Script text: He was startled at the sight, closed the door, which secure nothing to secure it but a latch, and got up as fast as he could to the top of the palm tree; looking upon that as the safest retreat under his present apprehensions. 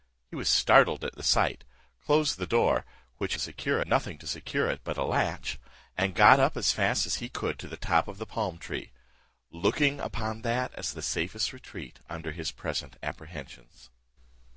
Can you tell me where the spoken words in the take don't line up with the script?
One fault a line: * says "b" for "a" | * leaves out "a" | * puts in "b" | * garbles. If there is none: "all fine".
all fine